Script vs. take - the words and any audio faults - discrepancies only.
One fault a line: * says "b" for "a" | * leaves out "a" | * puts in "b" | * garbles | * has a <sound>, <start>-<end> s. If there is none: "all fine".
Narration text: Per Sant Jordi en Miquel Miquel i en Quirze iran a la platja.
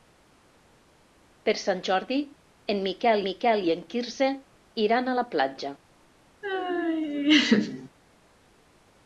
* has a laugh, 6.4-7.9 s